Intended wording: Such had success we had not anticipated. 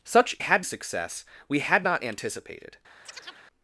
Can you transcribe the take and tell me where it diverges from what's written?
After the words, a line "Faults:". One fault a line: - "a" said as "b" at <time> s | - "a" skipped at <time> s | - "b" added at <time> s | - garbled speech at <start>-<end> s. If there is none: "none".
Such had success we had not anticipated.
Faults:
none